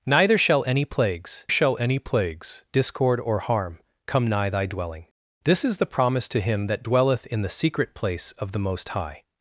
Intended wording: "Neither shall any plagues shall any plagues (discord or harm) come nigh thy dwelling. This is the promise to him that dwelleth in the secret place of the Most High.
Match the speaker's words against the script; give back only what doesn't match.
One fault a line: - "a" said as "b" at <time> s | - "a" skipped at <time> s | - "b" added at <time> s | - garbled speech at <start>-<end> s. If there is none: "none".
none